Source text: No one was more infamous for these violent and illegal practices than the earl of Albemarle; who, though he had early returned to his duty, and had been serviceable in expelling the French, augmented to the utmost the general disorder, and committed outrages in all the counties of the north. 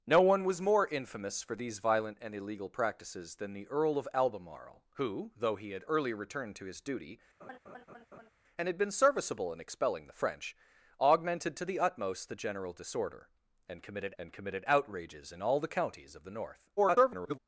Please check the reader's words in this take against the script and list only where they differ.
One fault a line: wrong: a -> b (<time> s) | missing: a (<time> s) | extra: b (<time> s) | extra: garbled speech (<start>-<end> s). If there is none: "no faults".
extra: and committed (14.2 s)
extra: garbled speech (16.8-17.4 s)